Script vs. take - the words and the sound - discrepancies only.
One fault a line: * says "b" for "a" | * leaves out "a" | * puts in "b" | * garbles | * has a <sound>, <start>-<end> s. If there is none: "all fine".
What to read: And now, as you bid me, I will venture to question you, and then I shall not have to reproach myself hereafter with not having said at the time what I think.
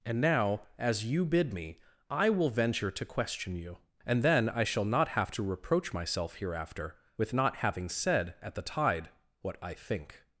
* says "tide" for "time"